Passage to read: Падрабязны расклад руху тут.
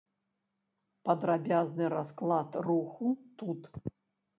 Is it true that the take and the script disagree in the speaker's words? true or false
false